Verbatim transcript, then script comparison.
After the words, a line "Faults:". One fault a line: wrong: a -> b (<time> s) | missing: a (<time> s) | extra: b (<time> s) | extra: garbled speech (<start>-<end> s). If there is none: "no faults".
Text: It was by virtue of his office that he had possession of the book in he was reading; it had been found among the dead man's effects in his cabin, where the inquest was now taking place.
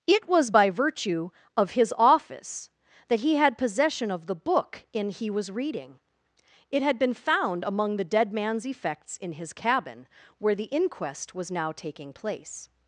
It was by virtue of his office that he had possession of the book in he was reading; it had been found among the dead man's effects in his cabin, where the inquest was now taking place.
Faults:
no faults